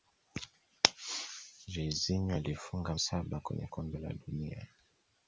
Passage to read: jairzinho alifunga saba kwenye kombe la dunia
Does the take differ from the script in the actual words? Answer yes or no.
no